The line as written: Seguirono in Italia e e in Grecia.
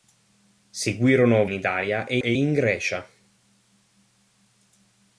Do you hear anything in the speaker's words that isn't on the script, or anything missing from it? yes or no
no